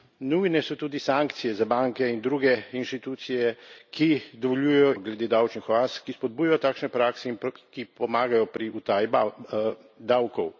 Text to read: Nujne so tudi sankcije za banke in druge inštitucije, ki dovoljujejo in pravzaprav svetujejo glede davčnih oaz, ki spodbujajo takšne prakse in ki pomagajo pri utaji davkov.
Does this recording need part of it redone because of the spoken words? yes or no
yes